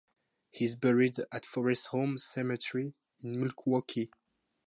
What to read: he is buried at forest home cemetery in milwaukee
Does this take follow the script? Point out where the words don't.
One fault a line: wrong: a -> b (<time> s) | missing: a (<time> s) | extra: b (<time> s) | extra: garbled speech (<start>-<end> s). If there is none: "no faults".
no faults